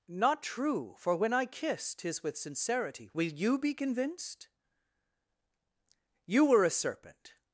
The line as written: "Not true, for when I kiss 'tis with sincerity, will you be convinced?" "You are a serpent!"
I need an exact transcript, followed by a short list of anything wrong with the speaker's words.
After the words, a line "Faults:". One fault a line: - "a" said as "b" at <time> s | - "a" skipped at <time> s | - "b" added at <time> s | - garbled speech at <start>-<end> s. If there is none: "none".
"Not true, for when I kiss 'tis with sincerity, will you be convinced?" "You were a serpent!"
Faults:
- "are" said as "were" at 6.5 s